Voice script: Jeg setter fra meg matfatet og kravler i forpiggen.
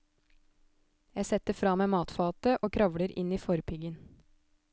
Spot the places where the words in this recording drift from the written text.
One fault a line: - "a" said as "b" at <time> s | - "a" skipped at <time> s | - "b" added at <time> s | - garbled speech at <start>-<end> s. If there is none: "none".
- "inn" added at 3.2 s